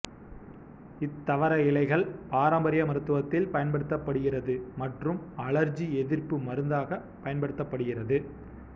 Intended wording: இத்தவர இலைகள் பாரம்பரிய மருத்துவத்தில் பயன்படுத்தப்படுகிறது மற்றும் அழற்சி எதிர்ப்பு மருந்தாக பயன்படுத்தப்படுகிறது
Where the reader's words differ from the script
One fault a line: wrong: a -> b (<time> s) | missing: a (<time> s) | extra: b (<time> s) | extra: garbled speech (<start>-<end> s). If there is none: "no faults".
no faults